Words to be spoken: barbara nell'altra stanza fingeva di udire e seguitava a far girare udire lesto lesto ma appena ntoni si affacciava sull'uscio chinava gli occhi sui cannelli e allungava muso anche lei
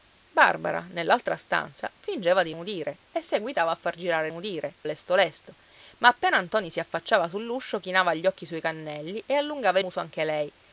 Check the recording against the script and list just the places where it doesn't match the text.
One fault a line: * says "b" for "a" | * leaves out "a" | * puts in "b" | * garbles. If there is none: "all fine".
all fine